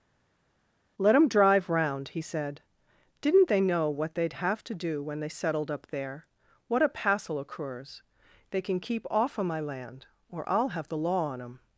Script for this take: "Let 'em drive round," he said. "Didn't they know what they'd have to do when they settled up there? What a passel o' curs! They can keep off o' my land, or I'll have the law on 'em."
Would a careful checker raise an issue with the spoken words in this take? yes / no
no